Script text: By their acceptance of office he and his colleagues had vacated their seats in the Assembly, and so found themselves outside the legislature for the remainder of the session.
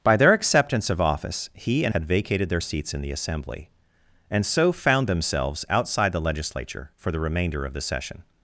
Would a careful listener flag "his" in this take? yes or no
yes